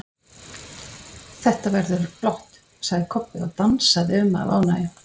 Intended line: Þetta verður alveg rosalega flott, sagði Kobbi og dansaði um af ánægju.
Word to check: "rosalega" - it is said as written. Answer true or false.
false